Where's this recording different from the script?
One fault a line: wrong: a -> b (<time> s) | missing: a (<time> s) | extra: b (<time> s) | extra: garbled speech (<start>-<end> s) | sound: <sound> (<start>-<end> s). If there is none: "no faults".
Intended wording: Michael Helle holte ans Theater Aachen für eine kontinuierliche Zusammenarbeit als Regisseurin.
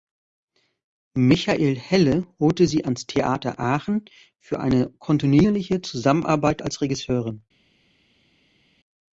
extra: sie (2.6 s)